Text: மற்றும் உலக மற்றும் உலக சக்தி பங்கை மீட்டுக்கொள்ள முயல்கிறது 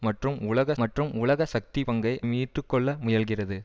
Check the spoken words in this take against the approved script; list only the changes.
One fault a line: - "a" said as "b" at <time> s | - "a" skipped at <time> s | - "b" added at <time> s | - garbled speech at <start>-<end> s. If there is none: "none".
none